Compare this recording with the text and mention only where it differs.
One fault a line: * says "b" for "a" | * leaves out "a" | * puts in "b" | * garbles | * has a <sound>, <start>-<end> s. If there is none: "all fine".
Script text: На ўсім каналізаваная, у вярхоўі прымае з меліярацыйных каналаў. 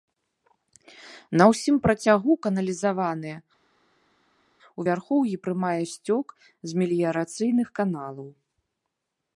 * puts in "працягу"
* puts in "сцёк"